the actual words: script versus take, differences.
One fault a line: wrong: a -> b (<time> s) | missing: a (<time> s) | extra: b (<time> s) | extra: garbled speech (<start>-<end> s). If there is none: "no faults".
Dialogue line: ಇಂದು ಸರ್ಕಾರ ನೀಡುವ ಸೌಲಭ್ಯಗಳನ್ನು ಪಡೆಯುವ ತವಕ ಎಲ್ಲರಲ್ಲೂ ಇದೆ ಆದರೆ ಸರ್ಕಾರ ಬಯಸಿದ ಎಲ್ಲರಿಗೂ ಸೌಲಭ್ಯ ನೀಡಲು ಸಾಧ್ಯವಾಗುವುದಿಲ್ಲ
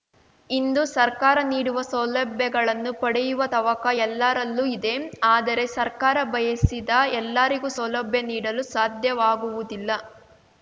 no faults